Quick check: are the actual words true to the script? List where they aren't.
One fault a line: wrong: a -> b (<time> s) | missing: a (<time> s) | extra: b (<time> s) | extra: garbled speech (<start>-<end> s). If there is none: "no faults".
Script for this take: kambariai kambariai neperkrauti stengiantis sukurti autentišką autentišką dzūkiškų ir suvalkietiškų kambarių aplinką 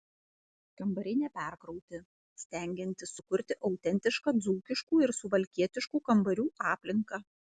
missing: kambariai (1.2 s)
missing: autentišką (4.3 s)